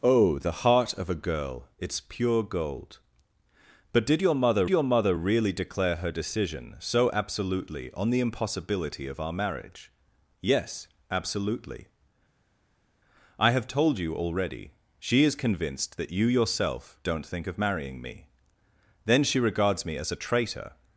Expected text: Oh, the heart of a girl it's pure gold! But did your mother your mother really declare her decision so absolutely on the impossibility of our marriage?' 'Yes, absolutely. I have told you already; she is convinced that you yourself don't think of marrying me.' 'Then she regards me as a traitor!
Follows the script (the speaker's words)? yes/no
yes